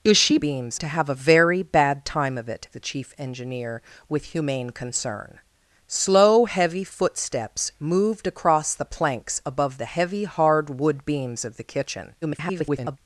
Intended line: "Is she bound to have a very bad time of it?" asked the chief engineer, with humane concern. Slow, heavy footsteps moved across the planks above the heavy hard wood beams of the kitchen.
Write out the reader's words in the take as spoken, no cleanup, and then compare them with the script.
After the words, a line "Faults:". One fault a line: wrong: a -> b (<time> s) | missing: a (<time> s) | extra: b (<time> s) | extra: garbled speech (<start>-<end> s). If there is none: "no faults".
"Is she beams to have a very bad time of it?" the chief engineer, with humane concern. Slow, heavy footsteps moved across the planks above the heavy hard wood beams of the kitchen. [garbled]
Faults:
wrong: bound -> beams (0.4 s)
missing: asked (2.7 s)
extra: garbled speech (12.2-13.0 s)